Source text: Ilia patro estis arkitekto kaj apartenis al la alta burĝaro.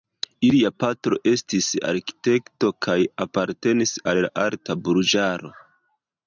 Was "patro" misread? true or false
false